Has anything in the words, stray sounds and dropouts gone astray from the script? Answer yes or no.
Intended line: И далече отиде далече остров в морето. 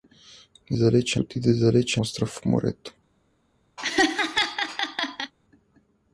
yes